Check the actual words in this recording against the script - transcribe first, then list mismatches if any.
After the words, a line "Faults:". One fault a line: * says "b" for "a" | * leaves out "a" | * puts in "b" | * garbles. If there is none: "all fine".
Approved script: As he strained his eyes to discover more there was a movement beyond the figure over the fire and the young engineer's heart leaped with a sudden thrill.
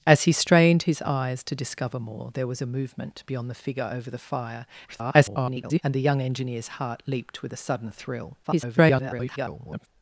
As he strained his eyes to discover more there was a movement beyond the figure over the fire [garbled] and the young engineer's heart leaped with a sudden thrill. [garbled]
Faults:
* garbles
* garbles